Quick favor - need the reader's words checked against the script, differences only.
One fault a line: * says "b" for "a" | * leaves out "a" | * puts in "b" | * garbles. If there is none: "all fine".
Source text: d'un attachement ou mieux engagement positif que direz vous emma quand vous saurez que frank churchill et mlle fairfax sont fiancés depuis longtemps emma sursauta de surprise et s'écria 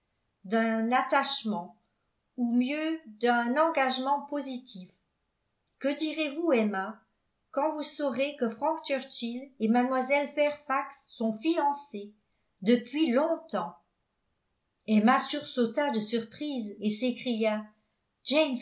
* puts in "d'un"